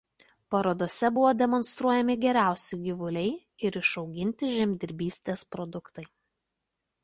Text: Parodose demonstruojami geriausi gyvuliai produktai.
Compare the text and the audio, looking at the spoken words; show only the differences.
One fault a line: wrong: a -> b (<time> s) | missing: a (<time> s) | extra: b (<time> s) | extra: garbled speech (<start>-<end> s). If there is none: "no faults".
extra: buvo (1.2 s)
extra: ir išauginti žemdirbystės (3.7 s)